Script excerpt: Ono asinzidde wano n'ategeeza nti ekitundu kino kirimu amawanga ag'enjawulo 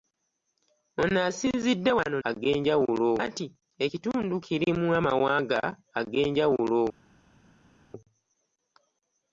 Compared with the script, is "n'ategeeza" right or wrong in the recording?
wrong